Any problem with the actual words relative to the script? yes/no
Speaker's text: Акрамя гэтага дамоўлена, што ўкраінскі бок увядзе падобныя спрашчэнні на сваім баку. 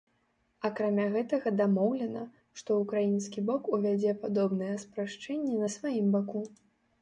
no